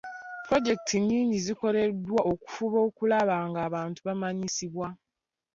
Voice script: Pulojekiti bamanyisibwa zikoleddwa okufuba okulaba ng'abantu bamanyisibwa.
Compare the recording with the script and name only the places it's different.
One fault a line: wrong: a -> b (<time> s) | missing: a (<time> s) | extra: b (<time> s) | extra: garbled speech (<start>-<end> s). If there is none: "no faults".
wrong: bamanyisibwa -> nnyingi (1.0 s)